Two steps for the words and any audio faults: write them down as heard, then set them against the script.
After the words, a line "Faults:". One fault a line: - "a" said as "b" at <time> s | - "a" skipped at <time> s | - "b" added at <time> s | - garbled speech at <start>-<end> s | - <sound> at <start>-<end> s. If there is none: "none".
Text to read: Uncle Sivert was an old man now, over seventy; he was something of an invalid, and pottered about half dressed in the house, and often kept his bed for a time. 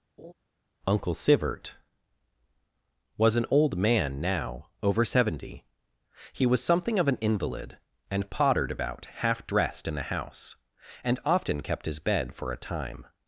Uncle Sivert was an old man now, over seventy; he was something of an invalid, and pottered about half dressed in the house, and often kept his bed for a time.
Faults:
- laugh at 0.2-0.3 s